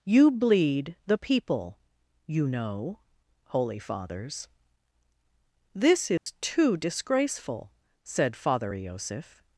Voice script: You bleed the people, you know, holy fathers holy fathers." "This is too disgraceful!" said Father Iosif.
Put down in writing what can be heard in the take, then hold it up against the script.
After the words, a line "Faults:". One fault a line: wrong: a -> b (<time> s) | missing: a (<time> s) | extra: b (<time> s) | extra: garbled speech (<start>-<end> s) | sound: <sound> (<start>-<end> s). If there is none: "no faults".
You bleed the people, you know, holy fathers." "This is too disgraceful!" said Father Iosif.
Faults:
missing: holy fathers (4.5 s)
sound: dropout (6.2-6.3 s)